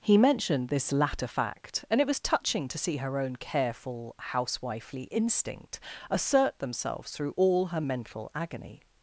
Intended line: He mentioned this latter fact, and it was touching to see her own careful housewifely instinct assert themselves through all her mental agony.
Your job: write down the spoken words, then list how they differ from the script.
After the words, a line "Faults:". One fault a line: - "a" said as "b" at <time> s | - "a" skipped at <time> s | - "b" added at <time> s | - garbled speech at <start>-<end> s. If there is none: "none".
He mentioned this latter fact, and it was touching to see her own careful housewifely instinct assert themselves through all her mental agony.
Faults:
none